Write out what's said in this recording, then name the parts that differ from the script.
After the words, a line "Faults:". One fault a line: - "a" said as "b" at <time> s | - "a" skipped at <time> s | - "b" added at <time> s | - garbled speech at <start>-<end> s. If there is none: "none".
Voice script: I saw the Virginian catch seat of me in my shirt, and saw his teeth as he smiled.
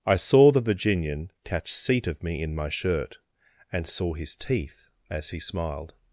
I saw the Virginian catch seat of me in my shirt, and saw his teeth as he smiled.
Faults:
none